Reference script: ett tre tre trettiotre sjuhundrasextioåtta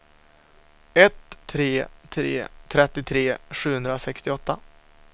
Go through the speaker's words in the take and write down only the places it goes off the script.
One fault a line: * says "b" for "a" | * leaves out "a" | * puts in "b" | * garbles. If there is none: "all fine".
all fine